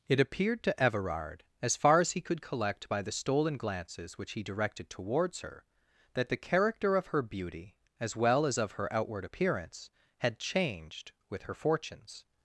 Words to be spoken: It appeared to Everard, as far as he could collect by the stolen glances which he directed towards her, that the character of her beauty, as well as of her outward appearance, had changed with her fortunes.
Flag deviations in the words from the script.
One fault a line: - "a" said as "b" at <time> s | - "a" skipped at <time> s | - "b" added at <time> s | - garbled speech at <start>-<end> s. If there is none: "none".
none